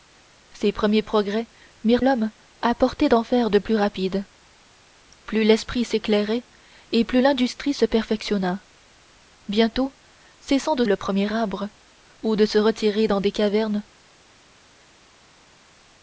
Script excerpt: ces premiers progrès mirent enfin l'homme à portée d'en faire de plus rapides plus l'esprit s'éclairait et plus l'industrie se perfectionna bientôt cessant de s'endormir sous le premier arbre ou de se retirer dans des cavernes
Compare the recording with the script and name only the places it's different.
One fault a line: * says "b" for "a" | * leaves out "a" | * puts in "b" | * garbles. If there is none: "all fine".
* leaves out "enfin"
* leaves out "s'endormir sous"